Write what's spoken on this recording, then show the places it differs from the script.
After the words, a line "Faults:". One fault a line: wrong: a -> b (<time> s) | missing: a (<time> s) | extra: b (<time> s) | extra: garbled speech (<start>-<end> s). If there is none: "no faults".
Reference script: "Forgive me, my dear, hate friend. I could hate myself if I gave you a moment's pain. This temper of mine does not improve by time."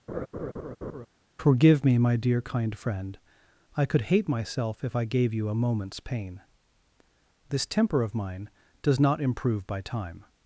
"Forgive me, my dear, kind friend. I could hate myself if I gave you a moment's pain. This temper of mine does not improve by time."
Faults:
wrong: hate -> kind (2.4 s)